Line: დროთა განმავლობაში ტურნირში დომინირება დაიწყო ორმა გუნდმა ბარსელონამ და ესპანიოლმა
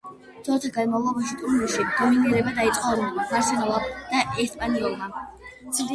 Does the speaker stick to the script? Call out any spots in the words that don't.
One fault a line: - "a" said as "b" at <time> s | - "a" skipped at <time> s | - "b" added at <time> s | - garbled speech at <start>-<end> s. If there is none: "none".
- "ორმა" skipped at 2.9 s